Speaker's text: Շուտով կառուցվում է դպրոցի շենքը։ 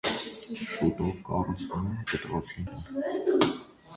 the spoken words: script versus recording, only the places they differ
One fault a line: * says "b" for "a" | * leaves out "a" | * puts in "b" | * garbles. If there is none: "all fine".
all fine